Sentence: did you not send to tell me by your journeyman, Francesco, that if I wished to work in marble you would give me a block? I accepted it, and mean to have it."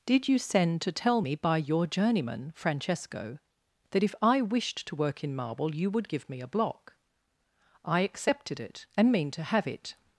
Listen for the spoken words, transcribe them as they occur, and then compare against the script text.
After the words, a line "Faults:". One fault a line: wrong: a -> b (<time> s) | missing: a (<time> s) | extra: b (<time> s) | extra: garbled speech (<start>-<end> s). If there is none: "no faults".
did you send to tell me by your journeyman, Francesco, that if I wished to work in marble you would give me a block? I accepted it, and mean to have it."
Faults:
missing: not (0.4 s)